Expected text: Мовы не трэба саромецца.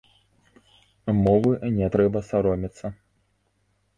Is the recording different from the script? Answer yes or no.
no